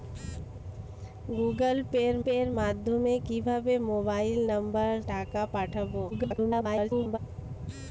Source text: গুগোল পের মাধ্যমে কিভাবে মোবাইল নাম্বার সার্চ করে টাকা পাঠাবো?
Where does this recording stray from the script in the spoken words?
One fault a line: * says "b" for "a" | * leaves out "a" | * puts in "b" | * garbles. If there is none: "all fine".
* puts in "পের"
* leaves out "সার্চ করে"
* garbles